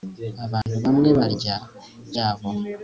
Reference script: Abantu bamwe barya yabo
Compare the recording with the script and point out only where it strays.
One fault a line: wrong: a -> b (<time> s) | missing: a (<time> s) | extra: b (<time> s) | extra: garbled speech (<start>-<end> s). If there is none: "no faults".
no faults